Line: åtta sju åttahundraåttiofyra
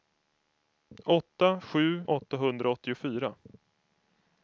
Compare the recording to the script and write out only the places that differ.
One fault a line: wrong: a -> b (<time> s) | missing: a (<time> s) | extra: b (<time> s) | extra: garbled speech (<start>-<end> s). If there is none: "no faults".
no faults